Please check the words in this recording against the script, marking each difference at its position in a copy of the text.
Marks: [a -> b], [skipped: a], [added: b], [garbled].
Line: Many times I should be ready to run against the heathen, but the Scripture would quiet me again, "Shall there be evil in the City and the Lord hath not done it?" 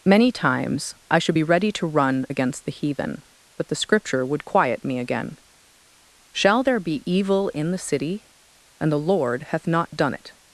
Many times I should be ready to run against the heathen, but the Scripture would quiet me again, "Shall there be evil in the City and the Lord hath not done it?"